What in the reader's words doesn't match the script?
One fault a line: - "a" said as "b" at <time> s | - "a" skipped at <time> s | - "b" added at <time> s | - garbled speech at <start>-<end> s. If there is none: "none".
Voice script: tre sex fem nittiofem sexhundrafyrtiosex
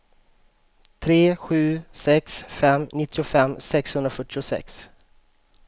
- "sju" added at 1.3 s